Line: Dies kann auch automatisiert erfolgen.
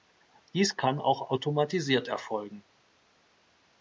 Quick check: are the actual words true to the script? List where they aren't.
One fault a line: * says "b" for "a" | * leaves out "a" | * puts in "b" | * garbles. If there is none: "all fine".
all fine